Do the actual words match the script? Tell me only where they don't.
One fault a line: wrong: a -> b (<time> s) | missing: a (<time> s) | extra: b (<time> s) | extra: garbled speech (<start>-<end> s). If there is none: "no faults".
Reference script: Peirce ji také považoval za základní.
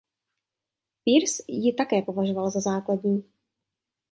no faults